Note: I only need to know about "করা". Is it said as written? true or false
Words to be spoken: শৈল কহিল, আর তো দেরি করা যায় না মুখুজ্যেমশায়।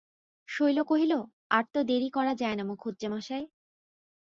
true